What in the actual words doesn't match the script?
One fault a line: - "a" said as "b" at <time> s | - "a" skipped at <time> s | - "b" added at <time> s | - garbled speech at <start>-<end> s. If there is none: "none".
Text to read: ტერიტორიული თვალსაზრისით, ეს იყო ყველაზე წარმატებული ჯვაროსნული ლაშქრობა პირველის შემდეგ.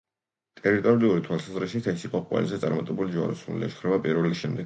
none